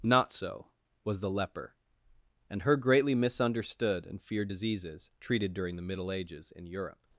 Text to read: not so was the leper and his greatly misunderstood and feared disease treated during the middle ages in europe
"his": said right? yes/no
no